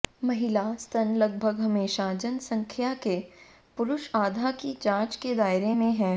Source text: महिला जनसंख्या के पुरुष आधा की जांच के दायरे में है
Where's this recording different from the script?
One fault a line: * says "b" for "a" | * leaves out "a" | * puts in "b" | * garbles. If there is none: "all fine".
* puts in "स्तन लगभग हमेशा"